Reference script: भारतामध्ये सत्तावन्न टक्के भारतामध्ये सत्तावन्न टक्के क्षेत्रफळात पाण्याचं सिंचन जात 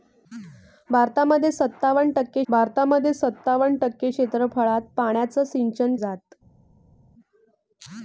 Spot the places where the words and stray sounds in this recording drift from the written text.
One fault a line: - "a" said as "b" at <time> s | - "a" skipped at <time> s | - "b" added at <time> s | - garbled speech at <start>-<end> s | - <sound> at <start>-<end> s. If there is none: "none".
none